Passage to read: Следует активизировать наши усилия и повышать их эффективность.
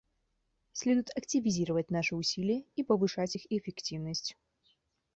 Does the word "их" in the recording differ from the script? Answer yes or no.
no